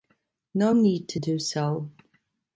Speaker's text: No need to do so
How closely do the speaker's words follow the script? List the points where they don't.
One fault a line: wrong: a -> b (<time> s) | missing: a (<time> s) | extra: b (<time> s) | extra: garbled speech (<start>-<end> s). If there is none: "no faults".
no faults